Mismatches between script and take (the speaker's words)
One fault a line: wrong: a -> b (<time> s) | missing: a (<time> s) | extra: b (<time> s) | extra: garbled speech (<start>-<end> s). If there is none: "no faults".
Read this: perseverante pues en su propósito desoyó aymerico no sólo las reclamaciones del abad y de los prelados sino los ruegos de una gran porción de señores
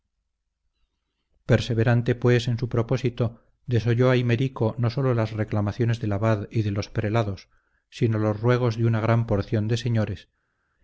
no faults